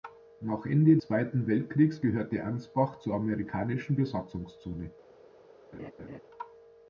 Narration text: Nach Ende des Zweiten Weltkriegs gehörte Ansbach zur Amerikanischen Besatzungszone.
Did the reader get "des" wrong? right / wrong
wrong